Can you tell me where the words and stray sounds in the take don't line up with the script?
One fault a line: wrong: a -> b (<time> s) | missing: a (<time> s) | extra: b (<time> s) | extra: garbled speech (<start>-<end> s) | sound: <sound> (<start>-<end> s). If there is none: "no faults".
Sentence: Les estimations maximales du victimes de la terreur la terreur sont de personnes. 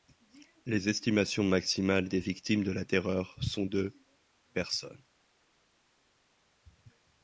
wrong: du -> des (2.1 s)
missing: la terreur (3.4 s)